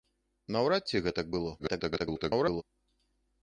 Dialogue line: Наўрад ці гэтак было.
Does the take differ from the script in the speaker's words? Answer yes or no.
yes